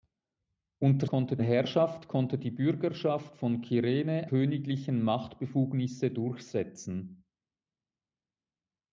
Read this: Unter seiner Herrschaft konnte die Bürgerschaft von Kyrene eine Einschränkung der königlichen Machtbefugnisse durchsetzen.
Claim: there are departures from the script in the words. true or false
true